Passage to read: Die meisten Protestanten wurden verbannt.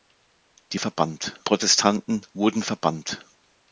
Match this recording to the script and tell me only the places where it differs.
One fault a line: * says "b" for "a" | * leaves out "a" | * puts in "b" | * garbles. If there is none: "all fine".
* says "verbannt" for "meisten"